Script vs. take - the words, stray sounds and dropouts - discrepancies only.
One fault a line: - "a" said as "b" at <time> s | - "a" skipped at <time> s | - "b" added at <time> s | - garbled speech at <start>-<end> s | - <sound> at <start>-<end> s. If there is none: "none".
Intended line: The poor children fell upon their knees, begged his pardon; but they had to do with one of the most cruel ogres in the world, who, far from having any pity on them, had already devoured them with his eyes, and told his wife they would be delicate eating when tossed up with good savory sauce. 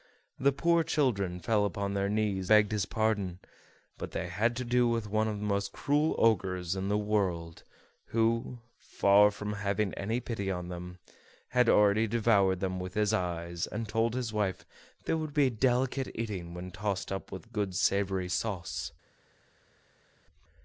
none